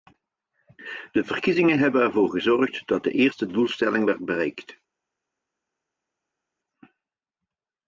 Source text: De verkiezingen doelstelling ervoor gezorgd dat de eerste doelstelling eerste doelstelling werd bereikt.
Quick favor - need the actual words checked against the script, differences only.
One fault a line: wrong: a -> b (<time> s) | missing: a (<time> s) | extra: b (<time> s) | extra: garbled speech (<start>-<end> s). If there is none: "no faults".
wrong: doelstelling -> hebben (1.8 s)
missing: eerste doelstelling (4.0 s)